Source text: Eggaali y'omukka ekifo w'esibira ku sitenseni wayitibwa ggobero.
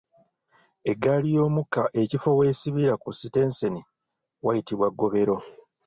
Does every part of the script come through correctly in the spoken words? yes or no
yes